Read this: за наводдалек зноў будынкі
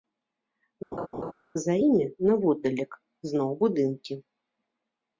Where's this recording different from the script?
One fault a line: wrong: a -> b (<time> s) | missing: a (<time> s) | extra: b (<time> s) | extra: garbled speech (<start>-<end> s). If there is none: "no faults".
extra: імі (1.9 s)